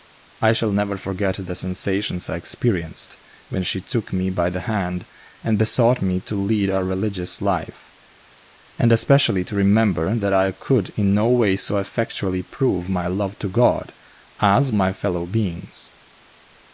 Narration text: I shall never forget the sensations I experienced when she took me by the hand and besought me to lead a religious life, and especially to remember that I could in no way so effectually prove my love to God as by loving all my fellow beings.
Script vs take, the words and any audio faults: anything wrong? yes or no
yes